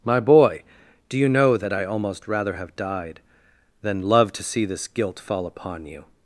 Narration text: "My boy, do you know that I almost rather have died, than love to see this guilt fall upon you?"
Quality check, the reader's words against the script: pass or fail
pass